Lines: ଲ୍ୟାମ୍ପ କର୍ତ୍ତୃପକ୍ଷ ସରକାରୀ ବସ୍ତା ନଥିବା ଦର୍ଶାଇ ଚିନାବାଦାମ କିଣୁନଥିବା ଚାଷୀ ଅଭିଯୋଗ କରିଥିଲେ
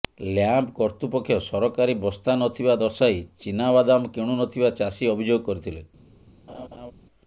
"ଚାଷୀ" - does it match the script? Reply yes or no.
yes